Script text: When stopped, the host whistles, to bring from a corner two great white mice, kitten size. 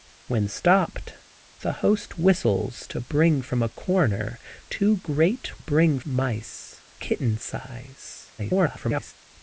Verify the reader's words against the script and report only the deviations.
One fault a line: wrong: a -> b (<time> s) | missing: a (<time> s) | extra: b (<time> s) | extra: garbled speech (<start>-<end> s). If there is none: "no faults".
wrong: white -> bring (5.6 s)
extra: garbled speech (8.4-9.1 s)